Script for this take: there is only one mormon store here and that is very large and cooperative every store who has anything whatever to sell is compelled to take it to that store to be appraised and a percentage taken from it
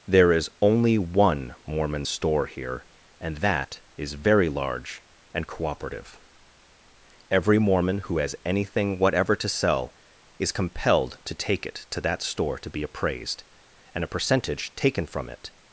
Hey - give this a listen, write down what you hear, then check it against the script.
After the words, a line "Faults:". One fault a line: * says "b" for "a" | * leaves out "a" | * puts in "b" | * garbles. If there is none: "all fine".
there is only one mormon store here and that is very large and cooperative every mormon who has anything whatever to sell is compelled to take it to that store to be appraised and a percentage taken from it
Faults:
* says "mormon" for "store"